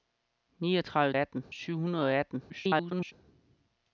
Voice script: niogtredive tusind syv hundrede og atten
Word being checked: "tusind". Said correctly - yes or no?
no